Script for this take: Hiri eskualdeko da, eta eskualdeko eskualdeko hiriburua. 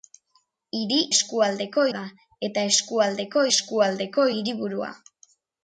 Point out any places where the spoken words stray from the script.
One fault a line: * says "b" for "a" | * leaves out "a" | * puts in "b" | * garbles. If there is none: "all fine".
all fine